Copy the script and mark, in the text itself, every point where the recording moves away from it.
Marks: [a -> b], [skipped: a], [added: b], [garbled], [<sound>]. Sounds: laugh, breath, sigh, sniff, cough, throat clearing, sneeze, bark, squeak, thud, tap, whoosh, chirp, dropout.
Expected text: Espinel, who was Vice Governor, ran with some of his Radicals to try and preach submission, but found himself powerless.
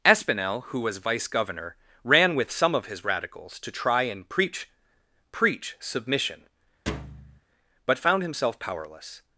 Espinel, who was Vice Governor, ran with some of his Radicals to try and preach [added: preach] submission, [thud] but found himself powerless.